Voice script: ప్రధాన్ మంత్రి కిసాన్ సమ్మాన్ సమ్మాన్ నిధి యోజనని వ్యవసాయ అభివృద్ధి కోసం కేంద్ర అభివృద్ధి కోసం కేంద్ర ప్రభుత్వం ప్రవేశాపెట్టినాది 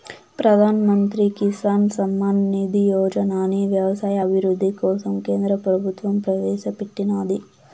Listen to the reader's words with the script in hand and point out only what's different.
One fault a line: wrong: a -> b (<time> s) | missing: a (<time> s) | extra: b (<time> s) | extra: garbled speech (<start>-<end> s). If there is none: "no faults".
missing: సమ్మాన్ (2.4 s)
missing: అభివృద్ధి కోసం కేంద్ర (5.6 s)